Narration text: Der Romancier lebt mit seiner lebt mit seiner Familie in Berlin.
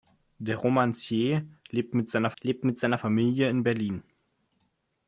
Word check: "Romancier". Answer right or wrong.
right